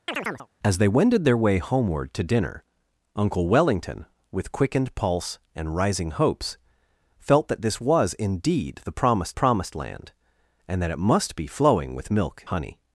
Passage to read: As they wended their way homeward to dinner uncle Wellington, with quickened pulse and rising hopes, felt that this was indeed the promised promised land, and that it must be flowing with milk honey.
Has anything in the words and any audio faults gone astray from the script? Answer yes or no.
yes